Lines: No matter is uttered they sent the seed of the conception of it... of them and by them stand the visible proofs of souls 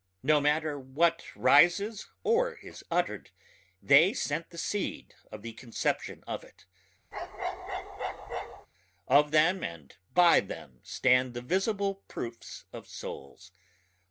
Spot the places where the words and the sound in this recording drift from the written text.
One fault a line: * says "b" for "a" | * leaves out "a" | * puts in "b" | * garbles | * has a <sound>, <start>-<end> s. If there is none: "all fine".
* puts in "what rises or"
* has a bark, 7.1-8.7 s